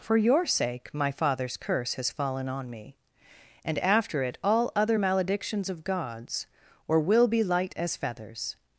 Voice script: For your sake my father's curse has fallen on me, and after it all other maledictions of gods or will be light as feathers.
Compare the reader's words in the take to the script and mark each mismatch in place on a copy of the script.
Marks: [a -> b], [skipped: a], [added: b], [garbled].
For your sake my father's curse has fallen on me, and after it all other maledictions of gods or will be light as feathers.